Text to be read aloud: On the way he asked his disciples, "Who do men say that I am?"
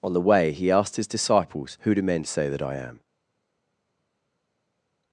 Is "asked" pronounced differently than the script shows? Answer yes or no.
no